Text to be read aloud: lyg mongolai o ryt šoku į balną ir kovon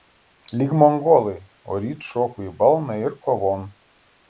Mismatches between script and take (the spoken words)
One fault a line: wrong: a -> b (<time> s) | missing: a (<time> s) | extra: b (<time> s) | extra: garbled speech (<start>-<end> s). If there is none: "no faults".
no faults